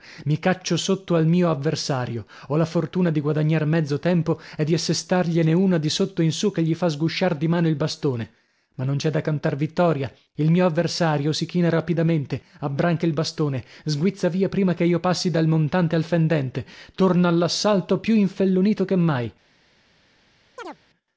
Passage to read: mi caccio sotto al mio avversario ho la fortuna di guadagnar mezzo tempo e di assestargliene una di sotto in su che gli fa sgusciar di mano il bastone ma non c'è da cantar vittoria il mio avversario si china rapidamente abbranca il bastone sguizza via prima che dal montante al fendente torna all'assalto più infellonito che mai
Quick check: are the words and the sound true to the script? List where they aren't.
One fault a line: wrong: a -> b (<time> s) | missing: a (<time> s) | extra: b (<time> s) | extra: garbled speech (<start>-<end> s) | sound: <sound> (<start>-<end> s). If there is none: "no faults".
extra: io passi (14.8 s)
sound: chirp (20.6-20.8 s)